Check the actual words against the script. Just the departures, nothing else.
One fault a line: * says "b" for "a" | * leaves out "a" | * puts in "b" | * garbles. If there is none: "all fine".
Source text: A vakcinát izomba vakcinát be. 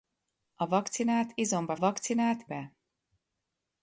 all fine